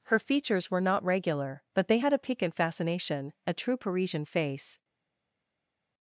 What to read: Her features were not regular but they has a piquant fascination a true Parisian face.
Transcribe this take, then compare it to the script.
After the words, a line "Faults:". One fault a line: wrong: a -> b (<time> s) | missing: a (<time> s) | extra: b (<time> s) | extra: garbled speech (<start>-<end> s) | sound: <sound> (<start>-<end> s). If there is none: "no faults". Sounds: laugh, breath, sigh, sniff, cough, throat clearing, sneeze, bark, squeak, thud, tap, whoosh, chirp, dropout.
Her features were not regular but they had a piquant fascination a true Parisian face.
Faults:
wrong: has -> had (2.0 s)